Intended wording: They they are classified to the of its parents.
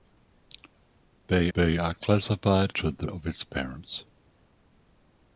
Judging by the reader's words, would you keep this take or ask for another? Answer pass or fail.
pass